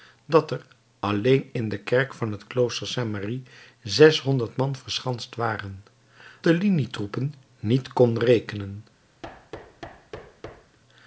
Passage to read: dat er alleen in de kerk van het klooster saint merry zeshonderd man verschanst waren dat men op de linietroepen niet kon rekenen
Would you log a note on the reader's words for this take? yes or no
yes